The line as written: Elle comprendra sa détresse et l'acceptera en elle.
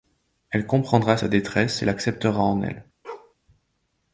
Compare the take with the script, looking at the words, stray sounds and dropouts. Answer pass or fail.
fail